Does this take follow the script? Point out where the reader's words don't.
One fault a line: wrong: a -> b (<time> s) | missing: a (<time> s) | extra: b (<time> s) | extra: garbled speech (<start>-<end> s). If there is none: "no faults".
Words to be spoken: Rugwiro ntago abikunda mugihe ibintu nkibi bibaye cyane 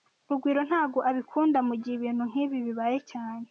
no faults